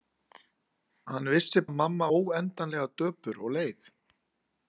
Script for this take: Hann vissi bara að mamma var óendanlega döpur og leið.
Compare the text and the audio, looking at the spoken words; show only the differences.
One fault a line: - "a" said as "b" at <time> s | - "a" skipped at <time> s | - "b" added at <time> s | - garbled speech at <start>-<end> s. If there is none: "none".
- "bara" skipped at 1.6 s
- "var" skipped at 2.1 s